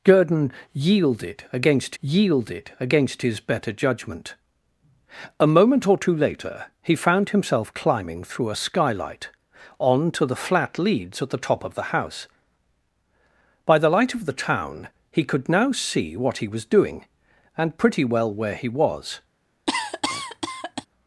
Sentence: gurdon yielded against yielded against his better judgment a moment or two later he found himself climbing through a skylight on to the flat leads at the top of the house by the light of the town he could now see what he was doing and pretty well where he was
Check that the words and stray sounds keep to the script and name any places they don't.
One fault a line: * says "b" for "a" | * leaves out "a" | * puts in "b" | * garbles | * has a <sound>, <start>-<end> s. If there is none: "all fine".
* has a cough, 19.7-20.9 s